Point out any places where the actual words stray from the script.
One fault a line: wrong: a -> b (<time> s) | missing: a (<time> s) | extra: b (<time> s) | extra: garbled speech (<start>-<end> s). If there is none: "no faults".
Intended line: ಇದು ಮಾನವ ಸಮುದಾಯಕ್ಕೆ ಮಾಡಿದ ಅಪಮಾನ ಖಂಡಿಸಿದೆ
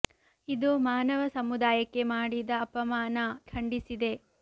no faults